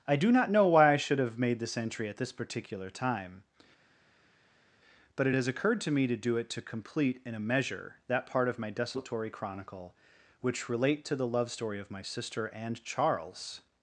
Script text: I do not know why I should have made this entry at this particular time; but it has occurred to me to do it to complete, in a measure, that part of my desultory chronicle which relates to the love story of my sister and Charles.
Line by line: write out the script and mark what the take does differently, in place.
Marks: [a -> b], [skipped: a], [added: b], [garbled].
I do not know why I should have made this entry at this particular time; but it has occurred to me to do it to complete, in a measure, that part of my desultory chronicle which [relates -> relate] to the love story of my sister and Charles.